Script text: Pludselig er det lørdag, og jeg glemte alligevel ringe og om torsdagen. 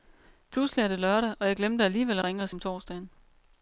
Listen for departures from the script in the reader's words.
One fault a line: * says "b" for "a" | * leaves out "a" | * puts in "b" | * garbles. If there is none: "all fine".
all fine